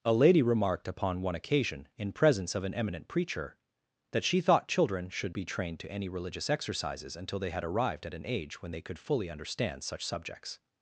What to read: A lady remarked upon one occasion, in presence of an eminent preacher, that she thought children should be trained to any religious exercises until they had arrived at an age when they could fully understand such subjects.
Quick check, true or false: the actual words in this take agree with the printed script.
true